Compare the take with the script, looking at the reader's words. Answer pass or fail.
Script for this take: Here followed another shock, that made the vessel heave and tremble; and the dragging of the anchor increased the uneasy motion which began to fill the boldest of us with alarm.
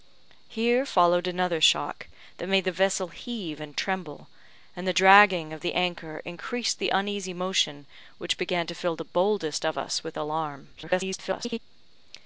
fail